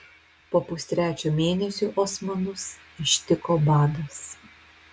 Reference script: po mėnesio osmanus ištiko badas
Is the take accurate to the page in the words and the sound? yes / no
no